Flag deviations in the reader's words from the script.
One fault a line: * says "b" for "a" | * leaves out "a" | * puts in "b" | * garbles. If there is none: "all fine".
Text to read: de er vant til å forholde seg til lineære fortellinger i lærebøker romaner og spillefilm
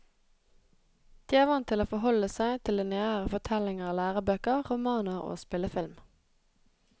all fine